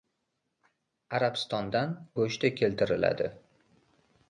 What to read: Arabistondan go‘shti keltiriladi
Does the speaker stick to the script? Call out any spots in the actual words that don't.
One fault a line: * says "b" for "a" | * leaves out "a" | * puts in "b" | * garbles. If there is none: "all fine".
all fine